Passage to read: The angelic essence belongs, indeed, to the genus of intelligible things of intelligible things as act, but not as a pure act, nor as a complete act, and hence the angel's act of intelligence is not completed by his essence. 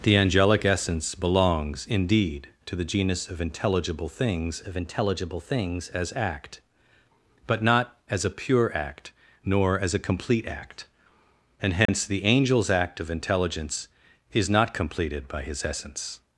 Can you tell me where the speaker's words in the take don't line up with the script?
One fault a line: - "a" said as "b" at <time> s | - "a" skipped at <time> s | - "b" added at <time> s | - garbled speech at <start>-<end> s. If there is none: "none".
none